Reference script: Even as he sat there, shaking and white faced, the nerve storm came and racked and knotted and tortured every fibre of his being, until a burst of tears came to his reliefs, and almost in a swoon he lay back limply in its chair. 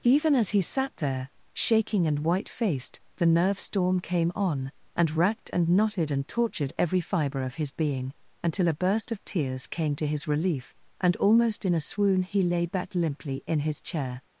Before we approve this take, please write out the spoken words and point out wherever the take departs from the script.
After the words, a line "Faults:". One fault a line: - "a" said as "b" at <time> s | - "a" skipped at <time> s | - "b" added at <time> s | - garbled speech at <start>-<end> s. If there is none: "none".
Even as he sat there, shaking and white faced, the nerve storm came on, and racked and knotted and tortured every fibre of his being, until a burst of tears came to his relief, and almost in a swoon he lay back limply in his chair.
Faults:
- "on" added at 4.3 s
- "reliefs" said as "relief" at 10.3 s
- "its" said as "his" at 13.6 s